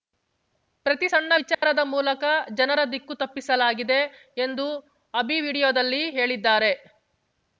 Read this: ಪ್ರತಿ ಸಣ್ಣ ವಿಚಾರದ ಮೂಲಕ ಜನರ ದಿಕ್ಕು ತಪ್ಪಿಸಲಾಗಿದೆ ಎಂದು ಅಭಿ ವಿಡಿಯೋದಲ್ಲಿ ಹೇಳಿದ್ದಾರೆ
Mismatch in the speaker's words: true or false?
false